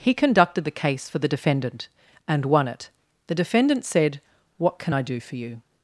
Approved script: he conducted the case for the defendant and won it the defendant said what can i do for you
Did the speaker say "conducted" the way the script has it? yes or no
yes